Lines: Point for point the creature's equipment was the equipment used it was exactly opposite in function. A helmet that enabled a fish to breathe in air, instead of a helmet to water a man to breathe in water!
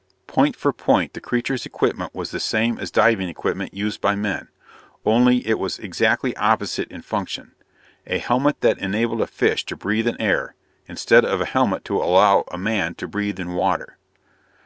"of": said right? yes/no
yes